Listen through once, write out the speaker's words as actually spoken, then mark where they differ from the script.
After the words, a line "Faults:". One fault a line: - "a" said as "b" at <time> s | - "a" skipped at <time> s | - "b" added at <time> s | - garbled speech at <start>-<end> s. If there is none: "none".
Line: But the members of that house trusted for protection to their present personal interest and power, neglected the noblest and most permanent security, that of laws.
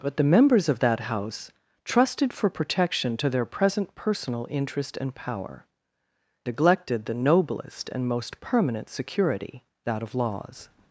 But the members of that house trusted for protection to their present personal interest and power, neglected the noblest and most permanent security, that of laws.
Faults:
none